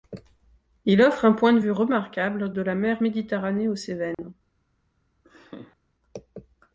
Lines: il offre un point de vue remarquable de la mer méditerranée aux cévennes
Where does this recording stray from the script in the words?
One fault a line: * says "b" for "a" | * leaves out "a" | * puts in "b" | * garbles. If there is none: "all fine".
all fine